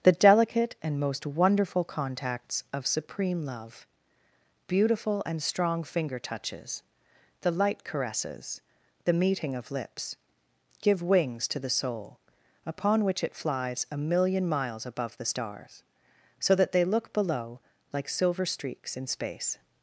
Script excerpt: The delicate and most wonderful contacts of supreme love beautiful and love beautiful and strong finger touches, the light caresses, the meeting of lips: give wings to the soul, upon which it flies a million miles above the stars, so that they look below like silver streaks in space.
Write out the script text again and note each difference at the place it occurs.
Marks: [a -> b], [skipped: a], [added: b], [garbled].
The delicate and most wonderful contacts of supreme love beautiful and [skipped: love beautiful and] strong finger touches, the light caresses, the meeting of lips: give wings to the soul, upon which it flies a million miles above the stars, so that they look below like silver streaks in space.